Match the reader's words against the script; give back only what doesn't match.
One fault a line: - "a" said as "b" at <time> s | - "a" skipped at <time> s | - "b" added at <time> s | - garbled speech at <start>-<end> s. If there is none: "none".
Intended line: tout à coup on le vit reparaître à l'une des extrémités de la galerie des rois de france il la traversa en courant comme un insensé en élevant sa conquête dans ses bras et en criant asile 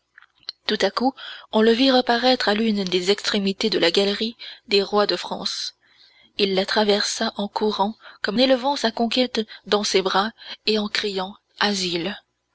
- "un insensé en" skipped at 8.4 s